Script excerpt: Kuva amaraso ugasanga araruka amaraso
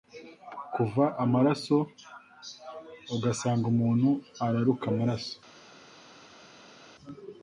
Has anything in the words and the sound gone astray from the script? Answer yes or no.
yes